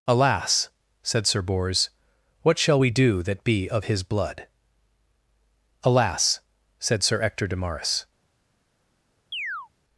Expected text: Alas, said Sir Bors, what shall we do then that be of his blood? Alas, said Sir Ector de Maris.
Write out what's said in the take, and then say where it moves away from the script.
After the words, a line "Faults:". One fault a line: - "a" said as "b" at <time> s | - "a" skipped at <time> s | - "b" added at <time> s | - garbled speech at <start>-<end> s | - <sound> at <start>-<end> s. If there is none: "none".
Alas, said Sir Bors, what shall we do that be of his blood? Alas, said Sir Ector de Maris.
Faults:
- "then" skipped at 3.2 s
- chirp at 9.3-9.7 s